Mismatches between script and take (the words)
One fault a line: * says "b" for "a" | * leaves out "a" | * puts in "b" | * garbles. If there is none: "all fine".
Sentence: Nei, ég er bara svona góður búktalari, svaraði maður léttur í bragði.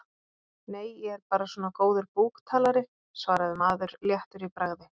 all fine